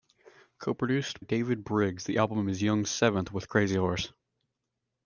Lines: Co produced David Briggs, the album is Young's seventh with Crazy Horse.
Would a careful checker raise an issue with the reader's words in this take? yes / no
no